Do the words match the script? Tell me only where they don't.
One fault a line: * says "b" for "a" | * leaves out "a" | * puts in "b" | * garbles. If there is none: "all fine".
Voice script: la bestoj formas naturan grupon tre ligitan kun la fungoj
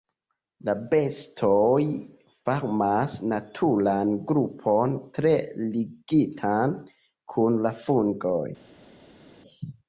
all fine